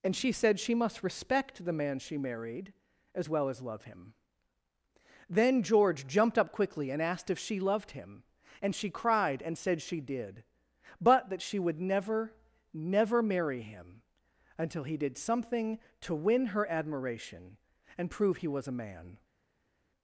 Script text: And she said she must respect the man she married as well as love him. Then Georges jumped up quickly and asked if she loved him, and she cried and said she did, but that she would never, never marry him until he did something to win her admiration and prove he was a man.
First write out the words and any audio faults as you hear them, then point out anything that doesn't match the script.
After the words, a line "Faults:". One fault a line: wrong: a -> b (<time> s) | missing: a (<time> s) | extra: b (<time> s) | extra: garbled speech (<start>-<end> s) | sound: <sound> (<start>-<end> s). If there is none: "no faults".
And she said she must respect the man she married as well as love him. Then George jumped up quickly and asked if she loved him, and she cried and said she did, but that she would never, never marry him until he did something to win her admiration and prove he was a man.
Faults:
wrong: Georges -> George (5.6 s)